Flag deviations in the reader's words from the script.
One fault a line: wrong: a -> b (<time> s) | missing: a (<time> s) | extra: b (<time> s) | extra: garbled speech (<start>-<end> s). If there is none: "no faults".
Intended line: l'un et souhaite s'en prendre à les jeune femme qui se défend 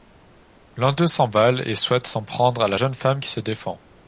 extra: d'eux s'emballe (0.9 s)
wrong: les -> la (2.7 s)